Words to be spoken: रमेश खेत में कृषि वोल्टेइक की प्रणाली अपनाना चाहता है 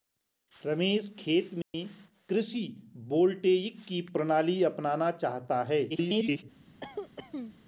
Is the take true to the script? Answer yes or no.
no